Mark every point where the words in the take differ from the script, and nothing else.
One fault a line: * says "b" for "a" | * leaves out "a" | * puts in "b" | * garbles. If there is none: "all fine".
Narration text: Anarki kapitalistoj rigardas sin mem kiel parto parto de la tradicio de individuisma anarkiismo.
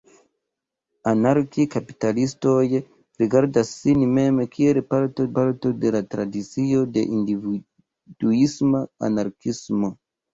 all fine